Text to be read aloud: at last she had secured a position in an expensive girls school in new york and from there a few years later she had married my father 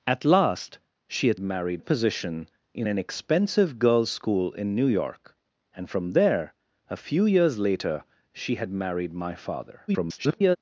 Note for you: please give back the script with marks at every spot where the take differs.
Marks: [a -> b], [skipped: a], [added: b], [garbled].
at last she had [secured -> married] a position in an expensive girls school in new york and from there a few years later she had married my father [garbled]